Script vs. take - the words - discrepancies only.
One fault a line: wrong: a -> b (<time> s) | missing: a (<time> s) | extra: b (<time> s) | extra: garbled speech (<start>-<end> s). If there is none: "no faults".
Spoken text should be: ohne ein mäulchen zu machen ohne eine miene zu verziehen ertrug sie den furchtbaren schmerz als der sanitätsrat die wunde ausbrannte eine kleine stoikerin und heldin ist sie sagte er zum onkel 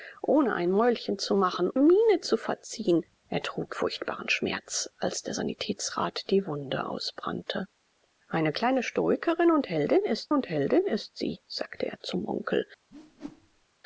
missing: ohne eine (1.7 s)
missing: sie den (3.7 s)
extra: und heldin ist (10.3 s)